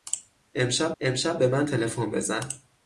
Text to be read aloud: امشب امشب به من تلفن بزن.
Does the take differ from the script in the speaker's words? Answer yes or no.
no